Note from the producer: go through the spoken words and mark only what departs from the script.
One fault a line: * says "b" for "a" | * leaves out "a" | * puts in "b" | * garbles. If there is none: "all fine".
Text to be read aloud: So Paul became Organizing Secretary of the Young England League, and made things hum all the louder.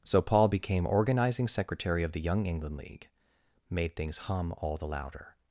* leaves out "and"